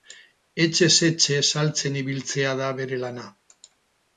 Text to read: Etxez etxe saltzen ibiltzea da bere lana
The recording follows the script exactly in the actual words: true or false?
true